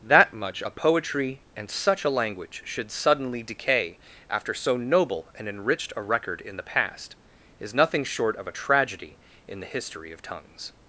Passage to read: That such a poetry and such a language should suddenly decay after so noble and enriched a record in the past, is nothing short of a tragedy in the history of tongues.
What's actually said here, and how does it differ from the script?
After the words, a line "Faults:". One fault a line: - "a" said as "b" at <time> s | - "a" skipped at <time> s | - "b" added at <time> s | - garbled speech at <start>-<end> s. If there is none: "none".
That much a poetry and such a language should suddenly decay after so noble and enriched a record in the past, is nothing short of a tragedy in the history of tongues.
Faults:
- "such" said as "much" at 0.3 s